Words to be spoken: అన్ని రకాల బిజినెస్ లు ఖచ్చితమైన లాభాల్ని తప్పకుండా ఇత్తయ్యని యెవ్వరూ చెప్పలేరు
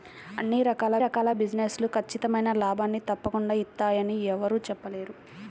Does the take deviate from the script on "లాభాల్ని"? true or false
false